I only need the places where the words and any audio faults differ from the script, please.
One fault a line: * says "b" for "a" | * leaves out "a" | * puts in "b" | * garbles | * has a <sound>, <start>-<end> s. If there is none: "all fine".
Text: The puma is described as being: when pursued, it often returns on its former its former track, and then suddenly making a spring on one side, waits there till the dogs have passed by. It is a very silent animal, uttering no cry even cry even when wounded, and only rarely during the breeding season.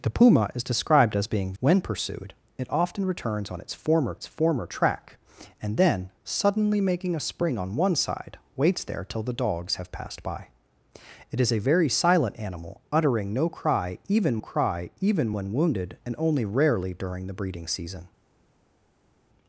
all fine